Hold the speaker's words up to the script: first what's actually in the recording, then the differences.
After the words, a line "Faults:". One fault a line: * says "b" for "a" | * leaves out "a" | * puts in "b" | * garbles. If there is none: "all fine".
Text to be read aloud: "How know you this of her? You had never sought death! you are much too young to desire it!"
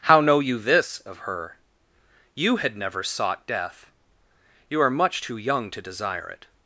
"How know you this of her? You had never sought death! you are much too young to desire it!"
Faults:
all fine